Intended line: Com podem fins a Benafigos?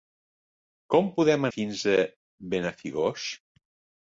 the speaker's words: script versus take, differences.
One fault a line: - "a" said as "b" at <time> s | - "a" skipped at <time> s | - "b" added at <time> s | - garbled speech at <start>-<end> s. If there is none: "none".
none